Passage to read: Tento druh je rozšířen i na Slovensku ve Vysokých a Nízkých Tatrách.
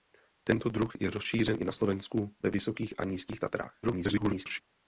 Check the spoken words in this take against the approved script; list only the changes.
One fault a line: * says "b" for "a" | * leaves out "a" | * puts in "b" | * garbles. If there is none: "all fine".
* garbles